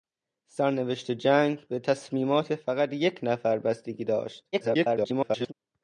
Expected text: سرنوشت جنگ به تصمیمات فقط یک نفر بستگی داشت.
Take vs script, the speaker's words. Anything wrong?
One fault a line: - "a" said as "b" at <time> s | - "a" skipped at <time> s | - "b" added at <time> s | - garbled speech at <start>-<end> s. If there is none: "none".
- garbled speech at 4.5-5.5 s